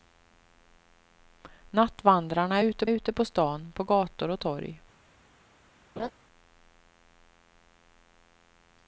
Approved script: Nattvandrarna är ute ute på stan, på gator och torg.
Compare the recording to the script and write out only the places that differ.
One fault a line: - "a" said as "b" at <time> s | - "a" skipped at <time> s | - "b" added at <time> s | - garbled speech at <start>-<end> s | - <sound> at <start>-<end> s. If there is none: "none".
- laugh at 6.0-6.1 s